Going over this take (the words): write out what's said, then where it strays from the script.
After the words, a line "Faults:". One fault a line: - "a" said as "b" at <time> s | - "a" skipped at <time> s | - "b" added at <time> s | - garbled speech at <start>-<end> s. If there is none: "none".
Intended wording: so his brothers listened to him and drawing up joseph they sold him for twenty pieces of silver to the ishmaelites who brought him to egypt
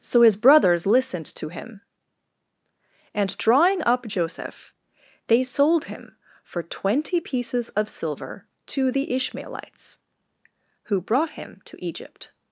so his brothers listened to him and drawing up joseph they sold him for twenty pieces of silver to the ishmaelites who brought him to egypt
Faults:
none